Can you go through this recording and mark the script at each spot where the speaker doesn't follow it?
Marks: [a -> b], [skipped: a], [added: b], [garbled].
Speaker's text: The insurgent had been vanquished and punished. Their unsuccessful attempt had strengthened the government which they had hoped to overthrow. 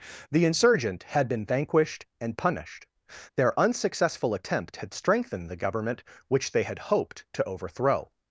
The insurgent had been vanquished and punished. Their unsuccessful attempt had strengthened the government which they had hoped to overthrow.